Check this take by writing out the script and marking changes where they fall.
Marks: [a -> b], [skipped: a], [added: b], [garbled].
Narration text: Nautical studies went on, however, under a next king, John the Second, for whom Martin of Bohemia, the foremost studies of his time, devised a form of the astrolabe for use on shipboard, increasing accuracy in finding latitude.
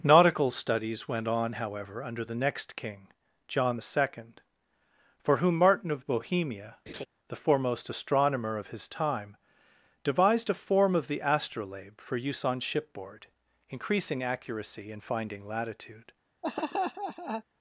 Nautical studies went on, however, under [a -> the] next king, John the Second, for whom Martin of Bohemia, the foremost [studies -> astronomer] of his time, devised a form of the astrolabe for use on shipboard, increasing accuracy in finding latitude.